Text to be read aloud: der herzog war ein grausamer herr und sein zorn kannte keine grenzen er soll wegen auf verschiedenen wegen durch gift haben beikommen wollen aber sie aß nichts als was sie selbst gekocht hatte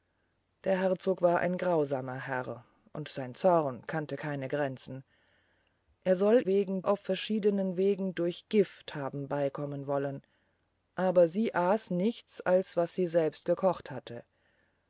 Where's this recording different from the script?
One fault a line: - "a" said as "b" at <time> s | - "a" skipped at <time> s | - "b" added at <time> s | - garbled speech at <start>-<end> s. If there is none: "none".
none